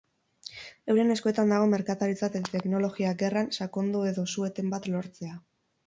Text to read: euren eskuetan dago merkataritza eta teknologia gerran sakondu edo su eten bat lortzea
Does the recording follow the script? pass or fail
pass